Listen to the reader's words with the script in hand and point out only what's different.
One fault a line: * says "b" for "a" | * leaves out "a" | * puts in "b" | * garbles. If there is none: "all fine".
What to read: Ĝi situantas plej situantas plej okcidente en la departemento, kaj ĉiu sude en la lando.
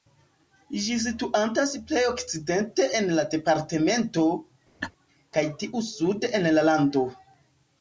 * leaves out "situantas plej"
* says "tiu" for "ĉiu"